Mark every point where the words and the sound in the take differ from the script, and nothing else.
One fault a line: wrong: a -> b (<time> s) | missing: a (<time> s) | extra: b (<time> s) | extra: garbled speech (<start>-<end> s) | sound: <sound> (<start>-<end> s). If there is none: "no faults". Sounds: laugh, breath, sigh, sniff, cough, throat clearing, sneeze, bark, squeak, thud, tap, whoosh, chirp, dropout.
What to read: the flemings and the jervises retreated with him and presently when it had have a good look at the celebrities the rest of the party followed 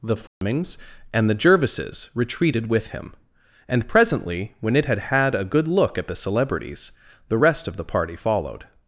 sound: dropout (0.3-0.4 s)
wrong: have -> had (5.0 s)